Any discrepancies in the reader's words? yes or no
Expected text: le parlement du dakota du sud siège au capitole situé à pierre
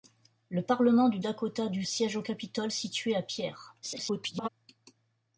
yes